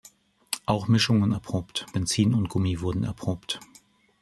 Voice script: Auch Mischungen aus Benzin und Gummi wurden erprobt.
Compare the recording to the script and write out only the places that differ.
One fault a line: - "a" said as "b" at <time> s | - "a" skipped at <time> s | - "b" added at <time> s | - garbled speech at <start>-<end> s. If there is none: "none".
- "aus" said as "erprobt" at 1.3 s